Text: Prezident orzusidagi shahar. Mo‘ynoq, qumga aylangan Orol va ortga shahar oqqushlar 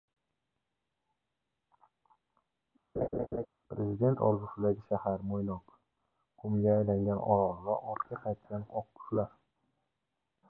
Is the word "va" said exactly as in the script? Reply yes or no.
yes